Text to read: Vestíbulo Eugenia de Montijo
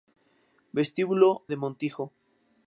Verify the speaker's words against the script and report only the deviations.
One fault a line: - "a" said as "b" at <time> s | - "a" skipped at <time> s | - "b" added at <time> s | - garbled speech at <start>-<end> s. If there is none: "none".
- "Eugenia" skipped at 1.4 s